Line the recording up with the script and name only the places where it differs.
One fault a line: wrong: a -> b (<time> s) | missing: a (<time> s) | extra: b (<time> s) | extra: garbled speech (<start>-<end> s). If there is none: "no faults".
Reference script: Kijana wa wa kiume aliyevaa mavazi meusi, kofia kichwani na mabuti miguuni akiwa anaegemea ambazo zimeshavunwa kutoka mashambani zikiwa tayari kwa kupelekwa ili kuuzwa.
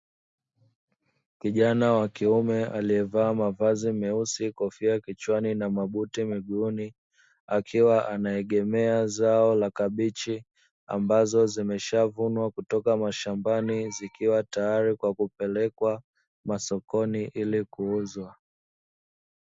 missing: wa (2.1 s)
extra: zao la kabichi (9.1 s)
extra: masokoni (16.4 s)